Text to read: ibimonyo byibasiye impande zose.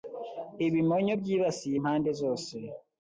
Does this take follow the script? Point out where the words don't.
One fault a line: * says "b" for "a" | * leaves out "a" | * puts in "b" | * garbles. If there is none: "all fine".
all fine